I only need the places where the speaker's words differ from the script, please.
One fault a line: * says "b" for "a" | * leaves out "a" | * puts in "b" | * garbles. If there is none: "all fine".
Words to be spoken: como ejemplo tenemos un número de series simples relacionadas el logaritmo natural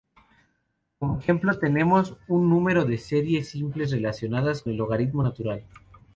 all fine